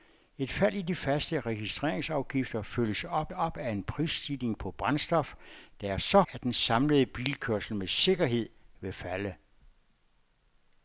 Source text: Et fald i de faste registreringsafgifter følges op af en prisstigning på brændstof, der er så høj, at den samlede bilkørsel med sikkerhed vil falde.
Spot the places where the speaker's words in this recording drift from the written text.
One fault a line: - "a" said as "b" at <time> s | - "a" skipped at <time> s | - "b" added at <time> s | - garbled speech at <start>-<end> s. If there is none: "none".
- "op" added at 3.3 s
- "høj" skipped at 6.2 s